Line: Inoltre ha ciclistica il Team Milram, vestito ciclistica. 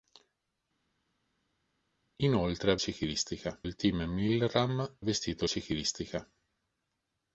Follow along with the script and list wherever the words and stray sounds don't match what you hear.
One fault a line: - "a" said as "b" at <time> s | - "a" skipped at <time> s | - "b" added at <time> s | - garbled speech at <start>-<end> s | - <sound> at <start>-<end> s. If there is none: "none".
none